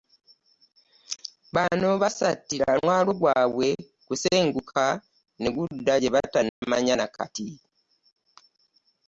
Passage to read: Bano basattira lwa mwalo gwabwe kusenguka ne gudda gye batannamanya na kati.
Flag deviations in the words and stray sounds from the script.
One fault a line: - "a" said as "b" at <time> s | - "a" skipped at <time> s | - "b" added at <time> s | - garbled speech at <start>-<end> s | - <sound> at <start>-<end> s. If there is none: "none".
- "lwa" skipped at 2.7 s
- dropout at 6.5-6.6 s